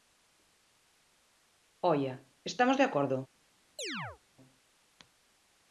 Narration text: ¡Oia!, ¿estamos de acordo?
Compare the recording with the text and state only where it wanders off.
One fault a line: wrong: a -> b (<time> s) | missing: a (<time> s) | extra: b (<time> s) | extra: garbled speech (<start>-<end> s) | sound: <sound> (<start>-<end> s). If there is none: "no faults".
sound: chirp (3.8-4.2 s)